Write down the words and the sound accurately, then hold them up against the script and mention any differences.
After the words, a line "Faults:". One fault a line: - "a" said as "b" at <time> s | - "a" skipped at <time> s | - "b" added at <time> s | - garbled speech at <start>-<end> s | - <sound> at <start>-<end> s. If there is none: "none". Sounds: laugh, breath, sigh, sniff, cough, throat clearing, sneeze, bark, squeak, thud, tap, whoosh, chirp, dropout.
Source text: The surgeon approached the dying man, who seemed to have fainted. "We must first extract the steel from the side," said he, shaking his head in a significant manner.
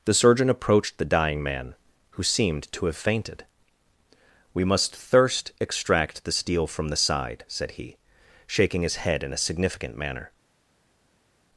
The surgeon approached the dying man, who seemed to have fainted. "We must thirst extract the steel from the side," said he, shaking his head in a significant manner.
Faults:
- "first" said as "thirst" at 5.0 s